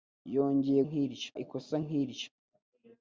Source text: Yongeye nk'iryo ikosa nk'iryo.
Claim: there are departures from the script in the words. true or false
false